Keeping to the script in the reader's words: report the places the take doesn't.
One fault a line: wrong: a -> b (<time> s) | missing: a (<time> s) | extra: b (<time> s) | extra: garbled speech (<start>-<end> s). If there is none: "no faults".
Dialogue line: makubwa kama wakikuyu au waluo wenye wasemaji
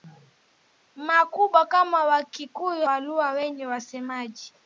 missing: au (2.9 s)